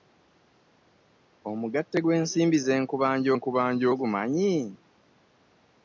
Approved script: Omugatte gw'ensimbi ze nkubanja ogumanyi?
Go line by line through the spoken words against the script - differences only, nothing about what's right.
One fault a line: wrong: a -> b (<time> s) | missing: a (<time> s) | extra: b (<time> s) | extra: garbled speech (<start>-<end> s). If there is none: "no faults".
extra: nkubanja (3.4 s)